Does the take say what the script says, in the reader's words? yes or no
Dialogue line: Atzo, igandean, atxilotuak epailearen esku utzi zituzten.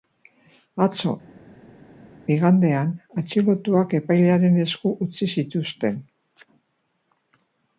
yes